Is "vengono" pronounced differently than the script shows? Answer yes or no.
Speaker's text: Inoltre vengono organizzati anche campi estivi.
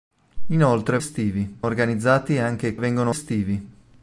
yes